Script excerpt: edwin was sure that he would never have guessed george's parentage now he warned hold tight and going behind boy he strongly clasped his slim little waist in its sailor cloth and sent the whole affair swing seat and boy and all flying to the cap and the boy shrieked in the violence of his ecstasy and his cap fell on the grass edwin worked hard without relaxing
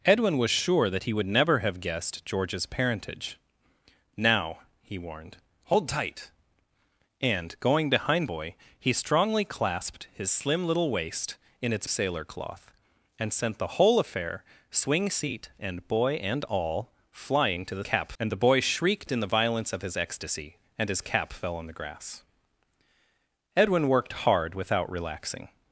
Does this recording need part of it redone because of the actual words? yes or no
no